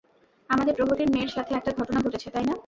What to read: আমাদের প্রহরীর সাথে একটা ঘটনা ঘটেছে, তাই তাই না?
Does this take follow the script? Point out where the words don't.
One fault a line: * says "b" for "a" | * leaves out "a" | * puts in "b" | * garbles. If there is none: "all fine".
* puts in "মেয়ের"
* leaves out "তাই"